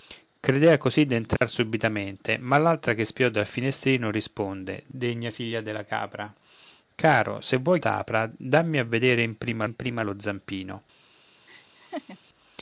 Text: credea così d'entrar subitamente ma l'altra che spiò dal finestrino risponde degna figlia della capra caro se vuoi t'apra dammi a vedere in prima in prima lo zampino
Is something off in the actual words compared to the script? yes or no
no